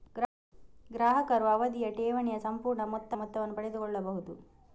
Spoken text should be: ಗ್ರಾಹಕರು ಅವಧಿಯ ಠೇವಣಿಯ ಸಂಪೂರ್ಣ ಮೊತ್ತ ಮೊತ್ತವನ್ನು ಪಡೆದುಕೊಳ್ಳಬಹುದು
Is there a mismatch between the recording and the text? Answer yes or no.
no